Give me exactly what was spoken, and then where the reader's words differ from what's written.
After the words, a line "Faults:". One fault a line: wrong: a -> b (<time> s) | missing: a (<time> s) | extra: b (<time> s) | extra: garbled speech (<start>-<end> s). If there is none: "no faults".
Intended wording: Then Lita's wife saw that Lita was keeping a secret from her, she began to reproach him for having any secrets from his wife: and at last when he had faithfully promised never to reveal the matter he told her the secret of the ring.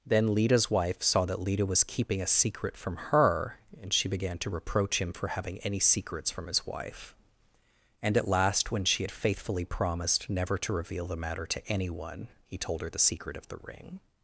Then Lita's wife saw that Lita was keeping a secret from her, and she began to reproach him for having any secrets from his wife: and at last when she had faithfully promised never to reveal the matter to anyone, he told her the secret of the ring.
Faults:
extra: and (3.8 s)
wrong: he -> she (8.8 s)
extra: to anyone (11.5 s)